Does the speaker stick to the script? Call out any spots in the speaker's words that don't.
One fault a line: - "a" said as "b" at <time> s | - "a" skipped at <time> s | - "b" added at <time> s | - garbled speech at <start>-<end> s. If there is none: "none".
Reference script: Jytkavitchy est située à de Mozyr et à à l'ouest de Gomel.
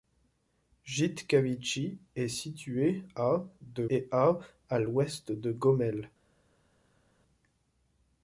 - "Mozyr" skipped at 3.9 s